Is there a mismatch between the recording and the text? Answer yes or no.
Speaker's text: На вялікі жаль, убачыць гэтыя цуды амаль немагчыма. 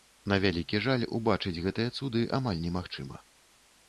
no